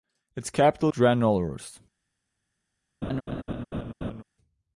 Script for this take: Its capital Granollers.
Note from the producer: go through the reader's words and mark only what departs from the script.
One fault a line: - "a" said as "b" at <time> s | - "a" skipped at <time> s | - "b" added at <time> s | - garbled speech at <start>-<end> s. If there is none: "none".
none